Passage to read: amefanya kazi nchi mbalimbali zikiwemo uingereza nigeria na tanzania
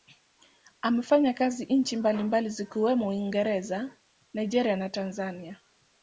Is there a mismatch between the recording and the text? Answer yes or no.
no